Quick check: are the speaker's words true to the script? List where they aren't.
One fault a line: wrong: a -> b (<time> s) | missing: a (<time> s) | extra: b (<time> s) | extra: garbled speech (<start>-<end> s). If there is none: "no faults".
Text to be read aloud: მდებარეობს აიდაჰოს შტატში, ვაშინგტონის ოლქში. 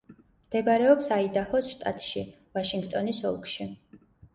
no faults